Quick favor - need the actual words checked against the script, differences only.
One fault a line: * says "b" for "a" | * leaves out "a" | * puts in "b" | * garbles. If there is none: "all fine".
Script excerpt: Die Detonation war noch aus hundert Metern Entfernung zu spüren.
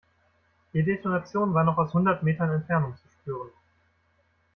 all fine